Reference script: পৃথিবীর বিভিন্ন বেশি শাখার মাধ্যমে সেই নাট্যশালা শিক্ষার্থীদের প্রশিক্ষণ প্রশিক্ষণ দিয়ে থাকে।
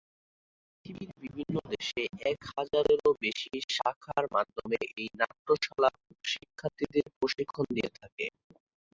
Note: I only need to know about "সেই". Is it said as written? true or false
false